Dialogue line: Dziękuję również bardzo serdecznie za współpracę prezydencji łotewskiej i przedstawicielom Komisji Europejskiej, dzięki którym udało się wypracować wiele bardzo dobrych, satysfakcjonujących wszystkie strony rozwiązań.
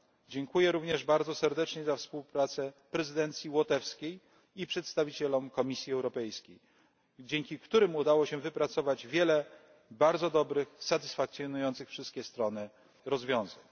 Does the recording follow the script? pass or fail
pass